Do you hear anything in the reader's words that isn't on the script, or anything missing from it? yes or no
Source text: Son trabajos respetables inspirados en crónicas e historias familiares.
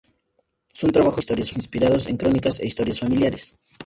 yes